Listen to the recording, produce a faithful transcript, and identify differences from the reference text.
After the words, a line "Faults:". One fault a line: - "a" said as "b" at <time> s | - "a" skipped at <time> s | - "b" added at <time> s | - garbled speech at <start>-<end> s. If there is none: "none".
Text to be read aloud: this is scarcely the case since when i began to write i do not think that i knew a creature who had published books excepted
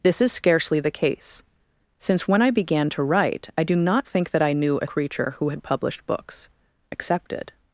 this is scarcely the case since when i began to write i do not think that i knew a creature who had published books excepted
Faults:
none